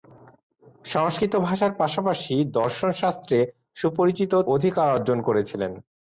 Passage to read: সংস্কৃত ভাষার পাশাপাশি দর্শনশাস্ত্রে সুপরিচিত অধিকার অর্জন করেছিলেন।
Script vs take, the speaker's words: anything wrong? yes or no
no